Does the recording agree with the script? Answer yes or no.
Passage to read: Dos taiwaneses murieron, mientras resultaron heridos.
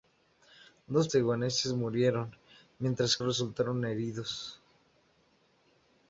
yes